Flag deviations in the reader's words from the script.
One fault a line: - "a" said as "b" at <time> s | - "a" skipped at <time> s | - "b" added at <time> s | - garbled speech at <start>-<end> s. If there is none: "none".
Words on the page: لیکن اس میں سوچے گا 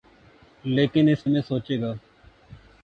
none